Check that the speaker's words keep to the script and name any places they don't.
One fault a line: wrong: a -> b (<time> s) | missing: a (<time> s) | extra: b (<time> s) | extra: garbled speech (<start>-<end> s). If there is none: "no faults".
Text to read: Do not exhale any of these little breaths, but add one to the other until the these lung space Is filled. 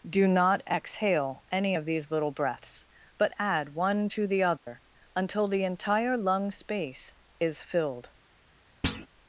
wrong: these -> entire (5.6 s)